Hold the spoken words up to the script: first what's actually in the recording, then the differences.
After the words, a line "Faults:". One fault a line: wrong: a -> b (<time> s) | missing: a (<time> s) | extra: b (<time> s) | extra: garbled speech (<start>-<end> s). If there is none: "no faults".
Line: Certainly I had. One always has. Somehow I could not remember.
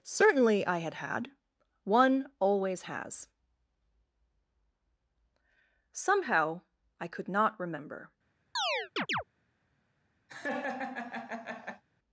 Certainly I had had. One always has. Somehow I could not remember.
Faults:
extra: had (0.9 s)